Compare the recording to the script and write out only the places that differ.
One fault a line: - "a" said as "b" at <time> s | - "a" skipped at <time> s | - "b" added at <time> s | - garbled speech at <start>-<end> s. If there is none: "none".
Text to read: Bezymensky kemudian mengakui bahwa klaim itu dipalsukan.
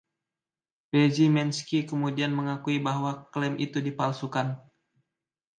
none